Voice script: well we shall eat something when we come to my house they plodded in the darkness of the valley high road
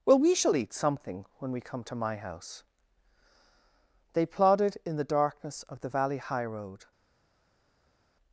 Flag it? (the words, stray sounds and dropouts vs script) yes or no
no